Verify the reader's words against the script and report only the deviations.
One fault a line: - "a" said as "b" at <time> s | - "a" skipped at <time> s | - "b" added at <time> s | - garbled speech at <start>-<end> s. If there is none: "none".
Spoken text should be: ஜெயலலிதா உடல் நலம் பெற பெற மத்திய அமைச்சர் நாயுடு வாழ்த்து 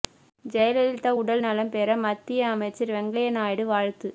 - "பெற" skipped at 2.0 s
- "வெங்கையா" added at 3.0 s